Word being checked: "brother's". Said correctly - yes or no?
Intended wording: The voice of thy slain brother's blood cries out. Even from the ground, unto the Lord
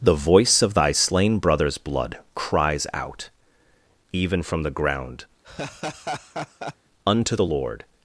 yes